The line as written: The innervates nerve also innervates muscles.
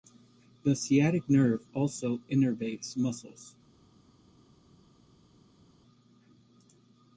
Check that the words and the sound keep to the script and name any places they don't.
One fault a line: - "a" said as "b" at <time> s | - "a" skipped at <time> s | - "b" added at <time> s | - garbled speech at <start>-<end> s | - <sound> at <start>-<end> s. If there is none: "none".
- "innervates" said as "sciatic" at 0.8 s